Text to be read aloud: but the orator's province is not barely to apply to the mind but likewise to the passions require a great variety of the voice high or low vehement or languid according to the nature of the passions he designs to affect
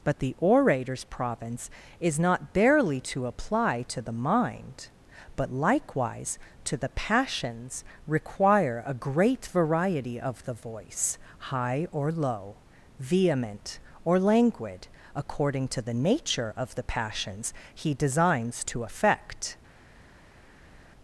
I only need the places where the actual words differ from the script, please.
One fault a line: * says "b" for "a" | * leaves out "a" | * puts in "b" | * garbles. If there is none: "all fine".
all fine